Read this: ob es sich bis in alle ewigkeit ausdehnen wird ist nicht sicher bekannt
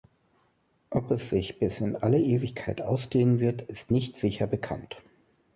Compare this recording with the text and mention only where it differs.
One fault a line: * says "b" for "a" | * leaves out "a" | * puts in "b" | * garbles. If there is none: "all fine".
all fine